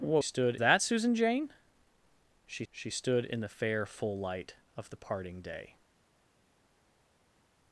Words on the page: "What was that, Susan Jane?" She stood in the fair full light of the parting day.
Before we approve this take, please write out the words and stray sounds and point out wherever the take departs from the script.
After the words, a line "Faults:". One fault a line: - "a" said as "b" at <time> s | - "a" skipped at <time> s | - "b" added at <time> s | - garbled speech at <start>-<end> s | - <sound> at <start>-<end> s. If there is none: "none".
"What stood that, Susan Jane?" She she stood in the fair full light of the parting day.
Faults:
- "was" said as "stood" at 0.2 s
- "she" added at 2.7 s